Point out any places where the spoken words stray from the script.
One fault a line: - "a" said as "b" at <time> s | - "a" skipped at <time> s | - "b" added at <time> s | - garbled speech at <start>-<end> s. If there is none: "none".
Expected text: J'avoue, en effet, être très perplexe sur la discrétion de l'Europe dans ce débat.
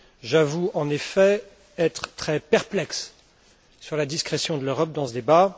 none